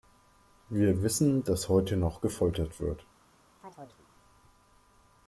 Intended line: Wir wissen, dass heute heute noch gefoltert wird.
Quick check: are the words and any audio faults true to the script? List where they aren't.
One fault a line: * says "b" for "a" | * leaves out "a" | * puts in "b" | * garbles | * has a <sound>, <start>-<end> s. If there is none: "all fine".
* leaves out "heute"
* has a chirp, 3.6-4.1 s